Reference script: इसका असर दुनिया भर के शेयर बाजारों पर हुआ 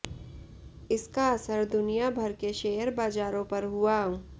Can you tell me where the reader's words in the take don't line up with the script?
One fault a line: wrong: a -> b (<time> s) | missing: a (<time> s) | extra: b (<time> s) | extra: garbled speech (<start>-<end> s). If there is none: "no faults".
no faults